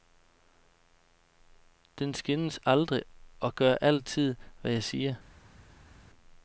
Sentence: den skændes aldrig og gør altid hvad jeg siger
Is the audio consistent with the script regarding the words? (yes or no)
yes